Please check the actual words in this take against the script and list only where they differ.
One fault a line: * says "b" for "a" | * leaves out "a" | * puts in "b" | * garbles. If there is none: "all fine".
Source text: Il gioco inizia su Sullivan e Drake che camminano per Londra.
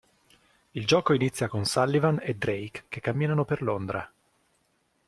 * says "con" for "su"